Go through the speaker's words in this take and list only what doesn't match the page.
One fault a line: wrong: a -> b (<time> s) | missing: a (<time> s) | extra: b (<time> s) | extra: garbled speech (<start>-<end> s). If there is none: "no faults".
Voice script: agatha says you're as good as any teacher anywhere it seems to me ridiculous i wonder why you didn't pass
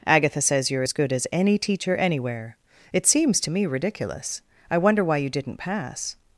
no faults